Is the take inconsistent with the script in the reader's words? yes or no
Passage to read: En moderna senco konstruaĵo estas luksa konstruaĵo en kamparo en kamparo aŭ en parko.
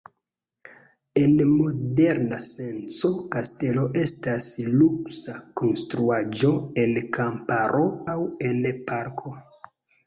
yes